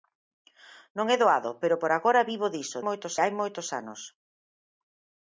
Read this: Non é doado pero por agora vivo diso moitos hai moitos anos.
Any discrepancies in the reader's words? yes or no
no